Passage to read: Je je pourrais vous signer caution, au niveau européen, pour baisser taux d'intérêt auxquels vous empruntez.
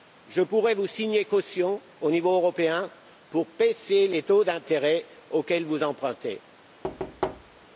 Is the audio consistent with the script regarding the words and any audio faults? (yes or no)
no